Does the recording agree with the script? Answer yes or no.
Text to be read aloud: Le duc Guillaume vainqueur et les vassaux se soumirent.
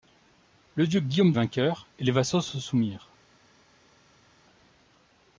yes